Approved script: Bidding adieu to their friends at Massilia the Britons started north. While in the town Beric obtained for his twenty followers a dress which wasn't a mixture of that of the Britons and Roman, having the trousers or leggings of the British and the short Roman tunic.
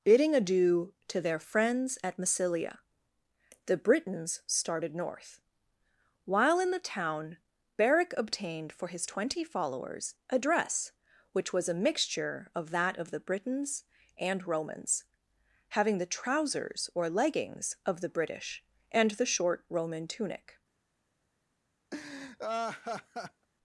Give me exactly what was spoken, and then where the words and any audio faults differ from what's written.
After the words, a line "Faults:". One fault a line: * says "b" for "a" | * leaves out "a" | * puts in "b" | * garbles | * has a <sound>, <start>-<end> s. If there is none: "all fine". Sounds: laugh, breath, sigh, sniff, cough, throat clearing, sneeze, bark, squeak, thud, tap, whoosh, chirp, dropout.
Bidding adieu to their friends at Massilia the Britons started north. While in the town Beric obtained for his twenty followers a dress which was a mixture of that of the Britons and Romans, having the trousers or leggings of the British and the short Roman tunic.
Faults:
* says "was" for "wasn't"
* says "Romans" for "Roman"
* has a laugh, 21.9-23.5 s